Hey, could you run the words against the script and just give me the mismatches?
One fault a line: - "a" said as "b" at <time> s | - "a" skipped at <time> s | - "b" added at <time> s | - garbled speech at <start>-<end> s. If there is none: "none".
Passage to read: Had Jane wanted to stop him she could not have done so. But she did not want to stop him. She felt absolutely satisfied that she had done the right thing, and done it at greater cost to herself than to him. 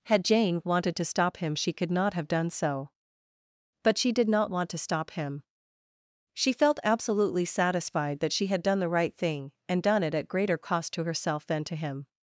none